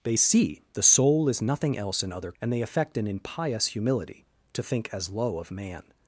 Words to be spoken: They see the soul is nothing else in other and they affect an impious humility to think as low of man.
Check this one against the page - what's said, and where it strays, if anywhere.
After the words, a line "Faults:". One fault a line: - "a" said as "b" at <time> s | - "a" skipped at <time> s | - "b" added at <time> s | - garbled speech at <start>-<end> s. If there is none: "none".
They see the soul is nothing else in other and they affect an impious humility to think as low of man.
Faults:
none